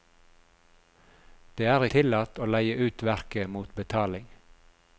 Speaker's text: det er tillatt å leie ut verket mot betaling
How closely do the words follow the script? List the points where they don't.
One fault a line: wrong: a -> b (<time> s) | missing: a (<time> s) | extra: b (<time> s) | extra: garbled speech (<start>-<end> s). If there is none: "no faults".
no faults